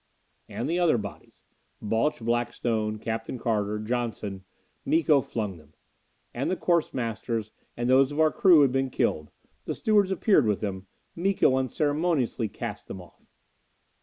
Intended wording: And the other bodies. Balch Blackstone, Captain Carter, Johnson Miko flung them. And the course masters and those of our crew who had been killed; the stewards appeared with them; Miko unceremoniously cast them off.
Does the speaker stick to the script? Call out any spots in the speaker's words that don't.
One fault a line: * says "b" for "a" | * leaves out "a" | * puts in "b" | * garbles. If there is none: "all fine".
all fine